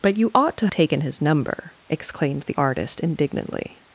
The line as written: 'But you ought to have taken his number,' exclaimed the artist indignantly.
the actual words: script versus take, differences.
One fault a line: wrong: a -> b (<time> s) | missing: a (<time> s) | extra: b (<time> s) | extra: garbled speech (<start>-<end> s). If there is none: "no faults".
missing: have (0.7 s)